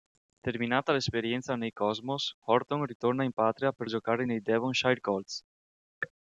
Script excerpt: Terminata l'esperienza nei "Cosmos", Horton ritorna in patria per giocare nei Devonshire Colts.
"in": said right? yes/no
yes